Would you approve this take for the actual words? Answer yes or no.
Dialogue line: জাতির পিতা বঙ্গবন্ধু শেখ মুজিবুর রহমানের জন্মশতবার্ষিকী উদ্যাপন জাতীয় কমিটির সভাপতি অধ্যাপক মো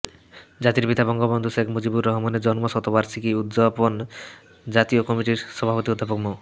yes